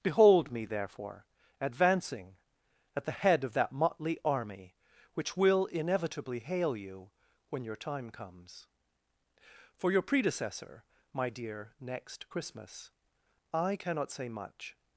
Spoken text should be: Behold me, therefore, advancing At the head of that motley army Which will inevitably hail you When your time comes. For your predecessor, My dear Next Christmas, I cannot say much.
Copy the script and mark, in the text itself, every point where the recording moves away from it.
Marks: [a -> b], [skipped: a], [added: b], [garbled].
Behold me, therefore, advancing At the head of that motley army Which will inevitably hail you When your time comes. For your predecessor, My dear Next Christmas, I cannot say much.